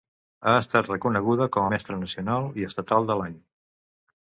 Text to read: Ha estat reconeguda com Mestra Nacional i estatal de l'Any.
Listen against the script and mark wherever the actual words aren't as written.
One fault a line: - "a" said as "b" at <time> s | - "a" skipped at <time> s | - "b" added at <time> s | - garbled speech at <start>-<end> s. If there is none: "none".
none